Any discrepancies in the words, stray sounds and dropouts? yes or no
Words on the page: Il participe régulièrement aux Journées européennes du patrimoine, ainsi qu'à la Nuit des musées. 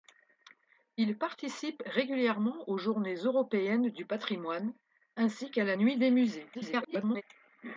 yes